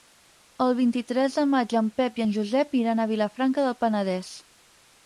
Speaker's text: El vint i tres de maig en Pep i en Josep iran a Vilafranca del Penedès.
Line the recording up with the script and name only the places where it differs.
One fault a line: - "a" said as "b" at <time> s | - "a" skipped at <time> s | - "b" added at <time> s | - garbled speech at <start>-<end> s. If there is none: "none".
none